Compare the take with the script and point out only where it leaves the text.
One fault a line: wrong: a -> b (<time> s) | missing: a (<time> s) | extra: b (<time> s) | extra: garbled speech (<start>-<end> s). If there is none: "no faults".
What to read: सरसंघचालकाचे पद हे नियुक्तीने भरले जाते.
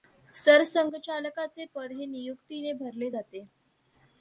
no faults